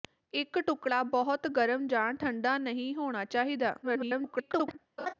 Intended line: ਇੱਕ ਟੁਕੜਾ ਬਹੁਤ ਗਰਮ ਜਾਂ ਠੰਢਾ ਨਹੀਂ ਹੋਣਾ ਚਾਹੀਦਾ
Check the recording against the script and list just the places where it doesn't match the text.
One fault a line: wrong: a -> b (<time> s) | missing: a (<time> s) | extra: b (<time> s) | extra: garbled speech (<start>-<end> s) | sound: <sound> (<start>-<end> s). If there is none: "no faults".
extra: garbled speech (3.8-4.8 s)
sound: laugh (5.0-5.1 s)